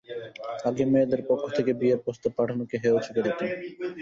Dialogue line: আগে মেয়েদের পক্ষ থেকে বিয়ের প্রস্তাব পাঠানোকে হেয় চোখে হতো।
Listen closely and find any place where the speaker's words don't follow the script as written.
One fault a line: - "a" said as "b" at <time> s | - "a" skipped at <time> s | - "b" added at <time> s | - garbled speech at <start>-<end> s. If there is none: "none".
none